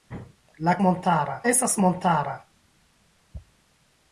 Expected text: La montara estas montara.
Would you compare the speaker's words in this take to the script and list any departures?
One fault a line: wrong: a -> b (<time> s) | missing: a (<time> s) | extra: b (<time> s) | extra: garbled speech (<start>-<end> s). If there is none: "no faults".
no faults